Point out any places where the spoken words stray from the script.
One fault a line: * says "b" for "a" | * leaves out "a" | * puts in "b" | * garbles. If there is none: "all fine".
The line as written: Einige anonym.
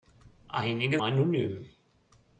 all fine